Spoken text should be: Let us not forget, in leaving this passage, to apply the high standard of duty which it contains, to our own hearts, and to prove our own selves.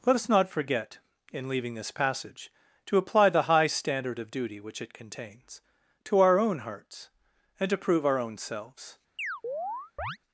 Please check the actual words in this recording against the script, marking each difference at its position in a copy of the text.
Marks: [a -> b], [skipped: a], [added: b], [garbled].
Let us not forget, in leaving this passage, to apply the high standard of duty which it contains, to our own hearts, and to prove our own selves.